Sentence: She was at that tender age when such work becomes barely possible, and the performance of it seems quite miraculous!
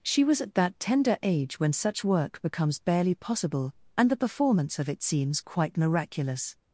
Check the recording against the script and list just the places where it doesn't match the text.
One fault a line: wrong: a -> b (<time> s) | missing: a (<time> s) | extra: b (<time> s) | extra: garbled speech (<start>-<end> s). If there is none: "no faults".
no faults